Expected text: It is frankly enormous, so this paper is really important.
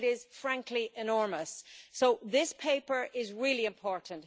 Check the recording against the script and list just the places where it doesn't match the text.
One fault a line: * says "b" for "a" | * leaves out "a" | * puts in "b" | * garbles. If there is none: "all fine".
all fine